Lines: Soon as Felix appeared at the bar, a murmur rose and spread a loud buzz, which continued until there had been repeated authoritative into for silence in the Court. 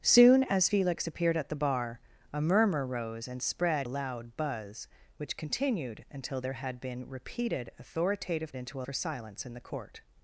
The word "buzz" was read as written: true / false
true